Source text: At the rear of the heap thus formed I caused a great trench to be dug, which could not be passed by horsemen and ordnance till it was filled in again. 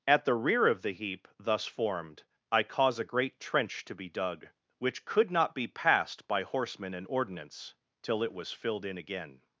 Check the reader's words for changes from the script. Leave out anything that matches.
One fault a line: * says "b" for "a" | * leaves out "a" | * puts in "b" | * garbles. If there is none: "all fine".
* says "cause" for "caused"